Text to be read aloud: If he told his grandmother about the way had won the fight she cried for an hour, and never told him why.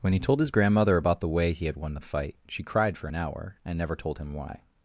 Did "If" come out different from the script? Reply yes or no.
yes